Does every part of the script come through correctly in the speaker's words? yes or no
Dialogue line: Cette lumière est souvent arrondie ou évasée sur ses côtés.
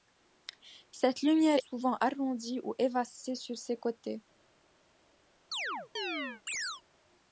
no